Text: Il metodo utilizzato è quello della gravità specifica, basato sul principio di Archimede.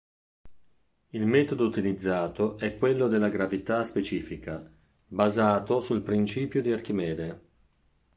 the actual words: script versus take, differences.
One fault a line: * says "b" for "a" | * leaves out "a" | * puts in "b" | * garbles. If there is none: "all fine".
all fine